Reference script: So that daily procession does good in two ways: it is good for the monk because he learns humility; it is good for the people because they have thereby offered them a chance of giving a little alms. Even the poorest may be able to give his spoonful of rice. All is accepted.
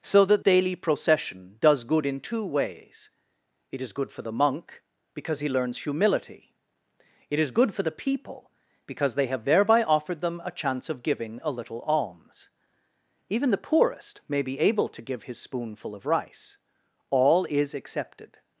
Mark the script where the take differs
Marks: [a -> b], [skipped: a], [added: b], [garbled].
So that daily procession does good in two ways: it is good for the monk because he learns humility; it is good for the people because they have thereby offered them a chance of giving a little alms. Even the poorest may be able to give his spoonful of rice. All is accepted.